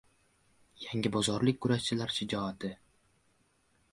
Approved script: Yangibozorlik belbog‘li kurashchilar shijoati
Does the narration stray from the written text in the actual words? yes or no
yes